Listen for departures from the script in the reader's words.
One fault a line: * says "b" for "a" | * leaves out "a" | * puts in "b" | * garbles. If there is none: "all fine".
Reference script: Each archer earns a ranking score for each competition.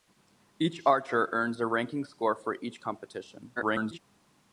* garbles